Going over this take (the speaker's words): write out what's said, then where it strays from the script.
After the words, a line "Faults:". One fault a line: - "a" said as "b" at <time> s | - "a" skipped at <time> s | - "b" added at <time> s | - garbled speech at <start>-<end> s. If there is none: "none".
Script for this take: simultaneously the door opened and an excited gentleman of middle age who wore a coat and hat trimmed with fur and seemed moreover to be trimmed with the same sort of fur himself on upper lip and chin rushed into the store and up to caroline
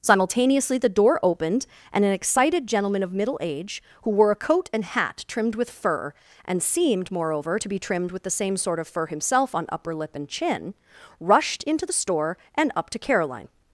simultaneously the door opened and an excited gentleman of middle age who wore a coat and hat trimmed with fur and seemed moreover to be trimmed with the same sort of fur himself on upper lip and chin rushed into the store and up to caroline
Faults:
none